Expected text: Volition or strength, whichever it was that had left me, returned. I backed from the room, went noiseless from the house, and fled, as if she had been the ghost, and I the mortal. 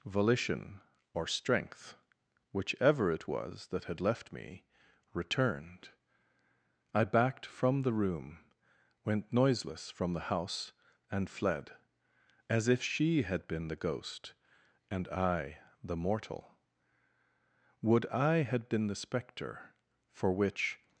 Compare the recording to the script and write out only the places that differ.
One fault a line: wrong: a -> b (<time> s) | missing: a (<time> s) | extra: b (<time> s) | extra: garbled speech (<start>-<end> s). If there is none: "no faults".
extra: Would I had been the spectre for which (17.8 s)